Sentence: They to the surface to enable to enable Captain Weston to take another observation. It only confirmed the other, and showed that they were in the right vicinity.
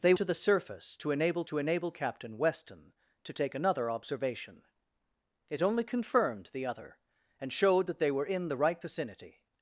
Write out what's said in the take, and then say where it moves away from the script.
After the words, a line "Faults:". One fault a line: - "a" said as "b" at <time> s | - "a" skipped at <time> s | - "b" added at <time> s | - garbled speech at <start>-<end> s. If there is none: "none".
They to the surface to enable to enable Captain Weston to take another observation. It only confirmed the other, and showed that they were in the right vicinity.
Faults:
none